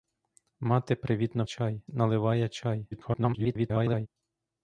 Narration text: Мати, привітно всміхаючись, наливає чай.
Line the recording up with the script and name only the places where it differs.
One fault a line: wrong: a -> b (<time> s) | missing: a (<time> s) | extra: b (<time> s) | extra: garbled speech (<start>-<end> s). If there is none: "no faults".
wrong: всміхаючись -> чай (1.4 s)
extra: garbled speech (2.9-4.1 s)